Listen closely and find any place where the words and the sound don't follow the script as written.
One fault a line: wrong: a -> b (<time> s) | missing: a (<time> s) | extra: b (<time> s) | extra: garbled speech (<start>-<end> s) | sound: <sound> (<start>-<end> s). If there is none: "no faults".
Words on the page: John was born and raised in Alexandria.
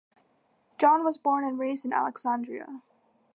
no faults